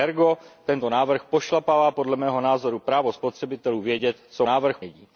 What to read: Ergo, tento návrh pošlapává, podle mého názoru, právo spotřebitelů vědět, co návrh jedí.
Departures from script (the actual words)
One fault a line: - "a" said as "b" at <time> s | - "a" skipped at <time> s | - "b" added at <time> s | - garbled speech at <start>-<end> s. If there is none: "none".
none